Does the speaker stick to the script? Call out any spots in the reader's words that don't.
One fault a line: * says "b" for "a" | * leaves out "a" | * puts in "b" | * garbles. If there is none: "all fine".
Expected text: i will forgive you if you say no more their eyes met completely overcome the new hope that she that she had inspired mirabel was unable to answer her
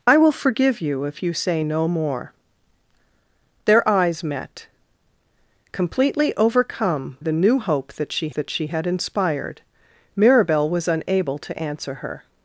all fine